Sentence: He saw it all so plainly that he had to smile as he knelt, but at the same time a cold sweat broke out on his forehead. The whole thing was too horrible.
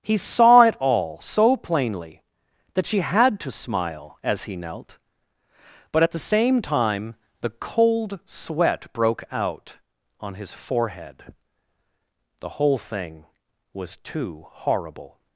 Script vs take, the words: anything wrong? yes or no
yes